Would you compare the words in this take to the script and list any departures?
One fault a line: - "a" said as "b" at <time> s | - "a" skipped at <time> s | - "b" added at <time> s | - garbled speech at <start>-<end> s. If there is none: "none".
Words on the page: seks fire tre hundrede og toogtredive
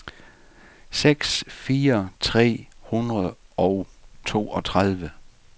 none